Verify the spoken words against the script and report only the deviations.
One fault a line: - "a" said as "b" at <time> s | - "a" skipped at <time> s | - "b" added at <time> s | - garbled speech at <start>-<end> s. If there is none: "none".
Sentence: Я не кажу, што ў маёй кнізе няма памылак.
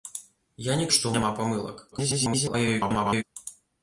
- "кажу" skipped at 0.9 s
- "маёй кнізе" skipped at 1.1 s
- garbled speech at 1.9-3.2 s